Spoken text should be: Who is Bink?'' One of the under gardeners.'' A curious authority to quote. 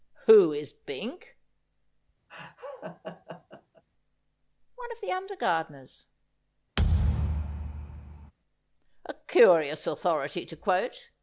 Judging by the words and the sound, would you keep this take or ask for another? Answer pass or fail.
fail